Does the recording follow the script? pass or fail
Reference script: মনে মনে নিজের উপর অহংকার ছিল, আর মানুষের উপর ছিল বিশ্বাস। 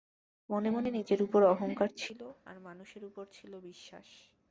pass